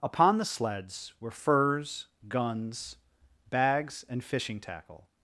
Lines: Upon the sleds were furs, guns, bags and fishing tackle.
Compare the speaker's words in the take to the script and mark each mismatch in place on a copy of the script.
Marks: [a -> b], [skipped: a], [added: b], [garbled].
Upon the sleds were furs, guns, bags and fishing tackle.